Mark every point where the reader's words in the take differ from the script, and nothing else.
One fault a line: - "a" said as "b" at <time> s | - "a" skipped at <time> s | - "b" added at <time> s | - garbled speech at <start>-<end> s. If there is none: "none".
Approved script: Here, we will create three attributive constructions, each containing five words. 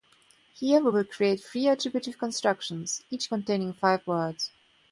none